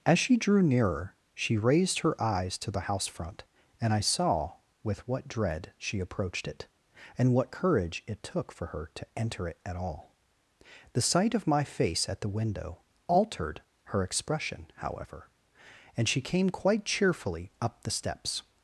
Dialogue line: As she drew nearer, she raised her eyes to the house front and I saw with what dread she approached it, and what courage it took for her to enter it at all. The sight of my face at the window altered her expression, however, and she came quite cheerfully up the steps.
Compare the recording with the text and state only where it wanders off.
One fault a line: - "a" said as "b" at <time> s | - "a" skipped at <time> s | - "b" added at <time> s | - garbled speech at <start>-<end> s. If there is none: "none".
none